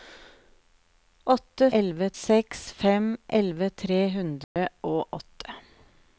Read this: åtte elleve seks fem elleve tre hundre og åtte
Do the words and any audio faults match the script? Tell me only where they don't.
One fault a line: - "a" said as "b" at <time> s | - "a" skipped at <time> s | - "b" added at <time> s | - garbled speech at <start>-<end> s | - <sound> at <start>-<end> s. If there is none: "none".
- dropout at 4.4-4.6 s